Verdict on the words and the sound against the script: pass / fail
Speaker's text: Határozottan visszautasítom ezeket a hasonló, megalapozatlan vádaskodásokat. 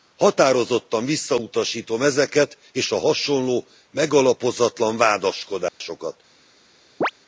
fail